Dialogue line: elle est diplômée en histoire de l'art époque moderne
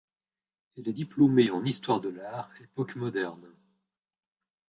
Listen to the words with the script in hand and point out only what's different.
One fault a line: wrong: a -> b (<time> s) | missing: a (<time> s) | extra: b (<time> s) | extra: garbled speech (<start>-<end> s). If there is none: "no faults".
no faults